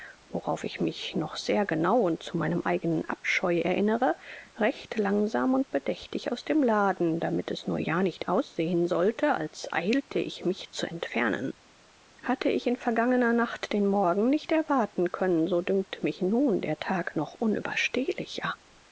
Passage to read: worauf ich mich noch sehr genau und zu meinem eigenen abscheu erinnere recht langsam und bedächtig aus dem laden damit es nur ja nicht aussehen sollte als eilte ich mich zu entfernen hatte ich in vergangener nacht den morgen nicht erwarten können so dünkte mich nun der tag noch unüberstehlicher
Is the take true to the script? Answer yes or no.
yes